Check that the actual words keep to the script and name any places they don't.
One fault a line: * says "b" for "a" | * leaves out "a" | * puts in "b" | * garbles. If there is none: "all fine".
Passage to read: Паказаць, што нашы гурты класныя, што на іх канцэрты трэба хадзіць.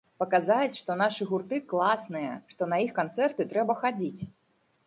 all fine